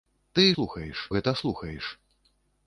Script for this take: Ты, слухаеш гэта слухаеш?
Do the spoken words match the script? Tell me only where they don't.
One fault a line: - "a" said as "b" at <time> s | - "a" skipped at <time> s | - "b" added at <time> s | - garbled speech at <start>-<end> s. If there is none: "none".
none